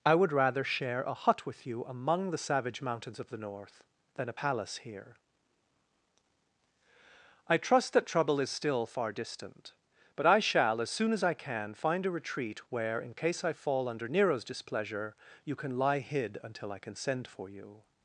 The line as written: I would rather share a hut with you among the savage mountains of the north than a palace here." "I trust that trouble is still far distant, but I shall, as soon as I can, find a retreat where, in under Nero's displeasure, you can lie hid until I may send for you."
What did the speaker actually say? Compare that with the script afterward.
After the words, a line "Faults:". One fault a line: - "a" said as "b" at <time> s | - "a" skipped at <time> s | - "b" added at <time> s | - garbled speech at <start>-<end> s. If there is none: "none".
I would rather share a hut with you among the savage mountains of the north than a palace here." "I trust that trouble is still far distant, but I shall, as soon as I can, find a retreat where, in case I fall under Nero's displeasure, you can lie hid until I can send for you."
Faults:
- "case I fall" added at 13.1 s
- "may" said as "can" at 16.8 s